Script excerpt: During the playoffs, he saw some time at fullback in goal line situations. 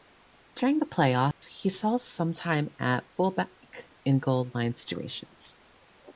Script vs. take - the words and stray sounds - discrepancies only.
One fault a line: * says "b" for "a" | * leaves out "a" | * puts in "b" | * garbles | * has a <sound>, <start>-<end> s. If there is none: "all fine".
* has a dropout, 1.3-1.4 s